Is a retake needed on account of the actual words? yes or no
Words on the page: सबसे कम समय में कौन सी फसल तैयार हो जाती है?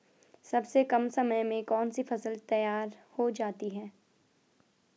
no